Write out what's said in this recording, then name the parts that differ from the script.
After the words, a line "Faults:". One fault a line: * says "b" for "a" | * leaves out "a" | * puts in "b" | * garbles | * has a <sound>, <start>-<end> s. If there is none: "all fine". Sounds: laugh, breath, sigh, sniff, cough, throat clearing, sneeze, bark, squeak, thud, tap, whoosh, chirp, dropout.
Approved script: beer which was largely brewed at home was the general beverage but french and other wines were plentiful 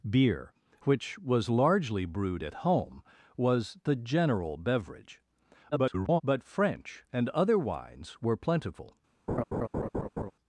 beer which was largely brewed at home was the general beverage [garbled] but french and other wines were plentiful
Faults:
* garbles
* has a laugh, 9.3-10.3 s